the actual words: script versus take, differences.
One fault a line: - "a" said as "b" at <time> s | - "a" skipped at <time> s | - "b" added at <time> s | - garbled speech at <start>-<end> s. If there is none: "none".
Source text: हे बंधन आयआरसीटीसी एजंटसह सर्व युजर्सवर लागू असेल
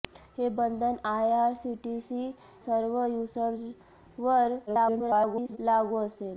- "एजंटसह" skipped at 2.2 s
- garbled speech at 4.7-5.6 s